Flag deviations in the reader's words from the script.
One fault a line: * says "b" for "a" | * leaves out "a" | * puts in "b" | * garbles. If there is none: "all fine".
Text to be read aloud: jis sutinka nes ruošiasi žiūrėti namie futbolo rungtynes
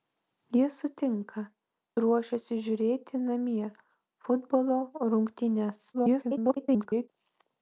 * leaves out "nes"
* garbles